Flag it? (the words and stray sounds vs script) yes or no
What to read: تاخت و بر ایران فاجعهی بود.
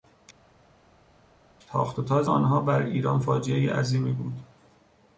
yes